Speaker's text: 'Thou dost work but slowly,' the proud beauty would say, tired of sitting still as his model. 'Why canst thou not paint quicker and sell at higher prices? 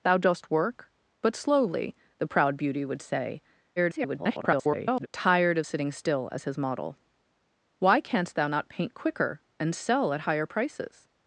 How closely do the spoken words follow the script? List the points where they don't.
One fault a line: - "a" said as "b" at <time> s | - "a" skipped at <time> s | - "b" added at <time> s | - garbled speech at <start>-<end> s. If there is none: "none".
- garbled speech at 3.8-5.1 s